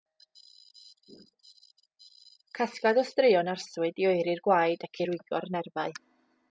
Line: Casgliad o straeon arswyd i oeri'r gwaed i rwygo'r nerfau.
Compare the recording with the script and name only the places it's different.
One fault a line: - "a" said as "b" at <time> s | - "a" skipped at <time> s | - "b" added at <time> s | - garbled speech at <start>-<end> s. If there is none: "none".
- "ac" added at 4.9 s